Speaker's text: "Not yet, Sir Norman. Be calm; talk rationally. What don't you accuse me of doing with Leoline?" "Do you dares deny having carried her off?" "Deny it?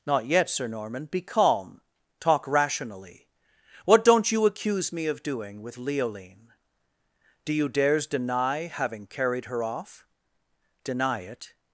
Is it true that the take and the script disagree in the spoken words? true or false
false